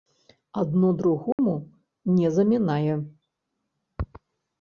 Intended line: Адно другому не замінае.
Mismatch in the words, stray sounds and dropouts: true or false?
true